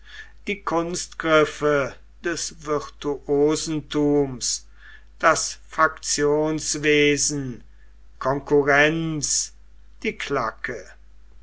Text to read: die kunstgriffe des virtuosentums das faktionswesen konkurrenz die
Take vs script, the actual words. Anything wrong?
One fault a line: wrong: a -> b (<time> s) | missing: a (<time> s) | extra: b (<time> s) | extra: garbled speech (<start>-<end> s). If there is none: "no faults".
no faults